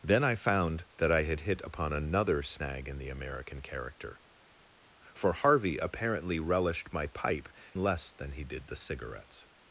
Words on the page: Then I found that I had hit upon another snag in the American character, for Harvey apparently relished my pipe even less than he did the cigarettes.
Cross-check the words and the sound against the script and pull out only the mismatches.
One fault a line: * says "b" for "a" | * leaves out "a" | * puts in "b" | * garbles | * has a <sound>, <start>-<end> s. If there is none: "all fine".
* leaves out "even"